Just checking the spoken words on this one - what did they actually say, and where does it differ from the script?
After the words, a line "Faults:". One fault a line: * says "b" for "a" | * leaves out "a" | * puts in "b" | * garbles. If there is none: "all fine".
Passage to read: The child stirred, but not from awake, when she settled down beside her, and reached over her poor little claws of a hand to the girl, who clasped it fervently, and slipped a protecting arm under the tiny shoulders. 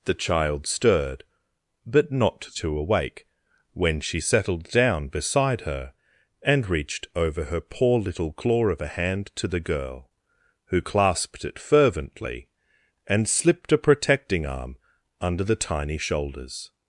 The child stirred, but not to awake, when she settled down beside her, and reached over her poor little claw of a hand to the girl, who clasped it fervently, and slipped a protecting arm under the tiny shoulders.
Faults:
* says "to" for "from"
* says "claw" for "claws"